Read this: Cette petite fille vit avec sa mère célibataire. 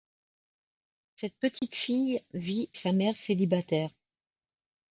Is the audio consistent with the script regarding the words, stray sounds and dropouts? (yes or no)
no